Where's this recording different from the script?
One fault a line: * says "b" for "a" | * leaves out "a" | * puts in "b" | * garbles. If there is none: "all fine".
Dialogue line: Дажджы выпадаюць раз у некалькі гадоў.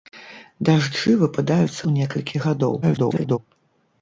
* leaves out "раз"
* garbles